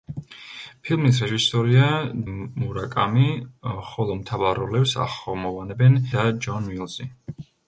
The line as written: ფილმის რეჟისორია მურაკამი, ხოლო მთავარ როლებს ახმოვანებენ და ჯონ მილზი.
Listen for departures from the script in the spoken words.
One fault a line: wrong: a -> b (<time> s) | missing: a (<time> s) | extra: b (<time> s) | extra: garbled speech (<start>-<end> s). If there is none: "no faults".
no faults